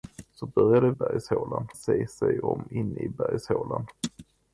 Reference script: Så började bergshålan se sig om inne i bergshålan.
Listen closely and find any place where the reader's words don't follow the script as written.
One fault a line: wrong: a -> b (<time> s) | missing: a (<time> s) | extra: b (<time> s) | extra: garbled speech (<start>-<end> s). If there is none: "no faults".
no faults